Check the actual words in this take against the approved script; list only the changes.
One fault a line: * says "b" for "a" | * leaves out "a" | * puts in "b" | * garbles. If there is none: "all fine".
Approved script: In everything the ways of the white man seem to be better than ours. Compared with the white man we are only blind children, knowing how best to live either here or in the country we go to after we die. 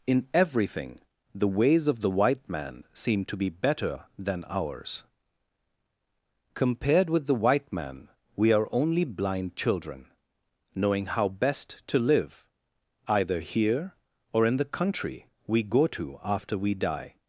all fine